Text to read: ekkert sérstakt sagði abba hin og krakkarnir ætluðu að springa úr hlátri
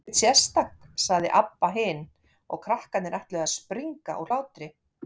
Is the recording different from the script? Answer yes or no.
no